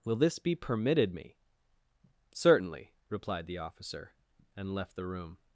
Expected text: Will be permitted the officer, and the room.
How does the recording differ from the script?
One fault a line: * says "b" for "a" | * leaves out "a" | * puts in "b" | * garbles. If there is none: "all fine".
* puts in "this"
* puts in "me Certainly replied"
* puts in "left"